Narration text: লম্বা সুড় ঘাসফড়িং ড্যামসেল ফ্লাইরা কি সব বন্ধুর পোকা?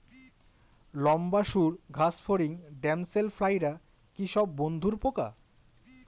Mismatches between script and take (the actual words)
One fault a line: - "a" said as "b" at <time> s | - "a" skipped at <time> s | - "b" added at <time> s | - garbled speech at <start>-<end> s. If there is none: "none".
none